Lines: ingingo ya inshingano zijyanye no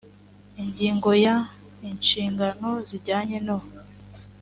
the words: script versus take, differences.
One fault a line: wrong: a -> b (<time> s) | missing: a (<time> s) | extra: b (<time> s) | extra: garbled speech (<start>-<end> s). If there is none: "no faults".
no faults